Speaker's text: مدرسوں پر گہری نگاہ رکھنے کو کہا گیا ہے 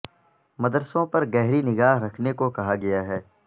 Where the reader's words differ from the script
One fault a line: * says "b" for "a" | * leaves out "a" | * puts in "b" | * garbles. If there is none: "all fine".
all fine